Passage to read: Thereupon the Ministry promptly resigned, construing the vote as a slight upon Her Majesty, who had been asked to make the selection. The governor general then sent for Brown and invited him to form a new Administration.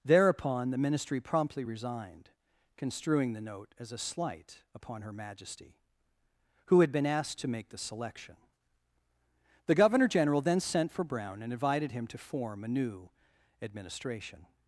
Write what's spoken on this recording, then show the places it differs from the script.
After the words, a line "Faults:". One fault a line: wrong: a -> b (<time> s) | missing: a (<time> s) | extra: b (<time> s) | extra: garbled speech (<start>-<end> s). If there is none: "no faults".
Thereupon the Ministry promptly resigned, construing the note as a slight upon Her Majesty, who had been asked to make the selection. The governor general then sent for Brown and invited him to form a new Administration.
Faults:
wrong: vote -> note (3.4 s)